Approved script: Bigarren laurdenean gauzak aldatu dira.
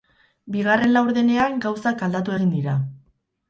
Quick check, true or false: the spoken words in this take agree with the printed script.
false